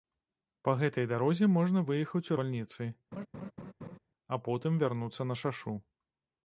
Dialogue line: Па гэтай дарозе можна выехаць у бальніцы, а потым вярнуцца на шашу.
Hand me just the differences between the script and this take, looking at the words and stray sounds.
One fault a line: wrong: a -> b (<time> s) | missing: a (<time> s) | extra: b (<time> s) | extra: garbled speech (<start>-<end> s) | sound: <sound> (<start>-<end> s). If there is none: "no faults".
sound: laugh (3.1-4.0 s)